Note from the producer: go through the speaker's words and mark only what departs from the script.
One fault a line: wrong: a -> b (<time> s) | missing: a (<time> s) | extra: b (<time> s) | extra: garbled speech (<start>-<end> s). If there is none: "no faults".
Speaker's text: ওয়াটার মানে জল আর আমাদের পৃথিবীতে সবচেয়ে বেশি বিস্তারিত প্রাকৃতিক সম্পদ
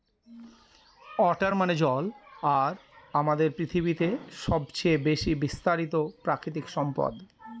no faults